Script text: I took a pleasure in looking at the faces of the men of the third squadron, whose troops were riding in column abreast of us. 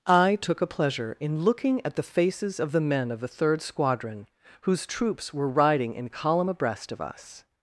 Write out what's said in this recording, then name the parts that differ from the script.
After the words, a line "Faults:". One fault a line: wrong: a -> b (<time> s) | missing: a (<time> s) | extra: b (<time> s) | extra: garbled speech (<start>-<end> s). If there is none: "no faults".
I took a pleasure in looking at the faces of the men of the third squadron, whose troops were riding in column abreast of us.
Faults:
no faults